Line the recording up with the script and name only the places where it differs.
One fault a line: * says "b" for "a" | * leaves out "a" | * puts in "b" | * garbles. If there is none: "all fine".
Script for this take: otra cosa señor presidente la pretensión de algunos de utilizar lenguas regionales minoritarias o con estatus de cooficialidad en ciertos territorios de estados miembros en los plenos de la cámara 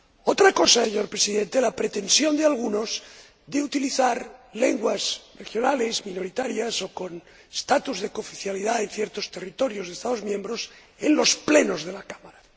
all fine